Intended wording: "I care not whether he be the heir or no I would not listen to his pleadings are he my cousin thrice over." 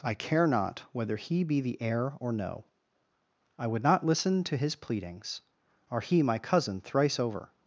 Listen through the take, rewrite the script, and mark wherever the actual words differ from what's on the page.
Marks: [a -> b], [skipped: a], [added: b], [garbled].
"I care not whether he be the heir or no I would not listen to his pleadings are he my cousin thrice over."